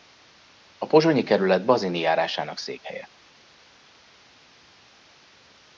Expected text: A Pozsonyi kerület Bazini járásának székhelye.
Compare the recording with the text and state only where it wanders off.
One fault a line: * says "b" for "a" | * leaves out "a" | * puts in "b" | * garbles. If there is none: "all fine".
all fine